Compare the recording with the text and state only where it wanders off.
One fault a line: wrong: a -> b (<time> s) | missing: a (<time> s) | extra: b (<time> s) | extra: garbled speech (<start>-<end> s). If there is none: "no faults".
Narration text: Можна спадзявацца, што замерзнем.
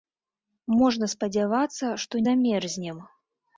no faults